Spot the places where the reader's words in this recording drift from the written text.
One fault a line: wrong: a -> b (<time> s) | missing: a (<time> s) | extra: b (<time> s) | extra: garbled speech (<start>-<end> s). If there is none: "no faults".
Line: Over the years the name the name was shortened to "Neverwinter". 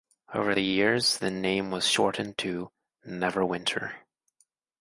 missing: the name (1.7 s)